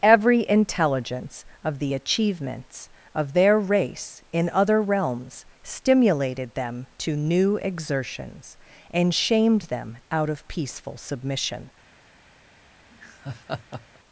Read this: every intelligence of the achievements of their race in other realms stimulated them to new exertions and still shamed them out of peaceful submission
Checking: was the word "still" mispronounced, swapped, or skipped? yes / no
yes